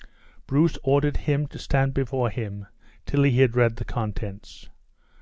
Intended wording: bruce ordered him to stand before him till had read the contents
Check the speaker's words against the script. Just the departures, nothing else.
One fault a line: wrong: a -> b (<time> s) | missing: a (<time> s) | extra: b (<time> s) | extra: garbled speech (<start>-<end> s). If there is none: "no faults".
extra: he (3.2 s)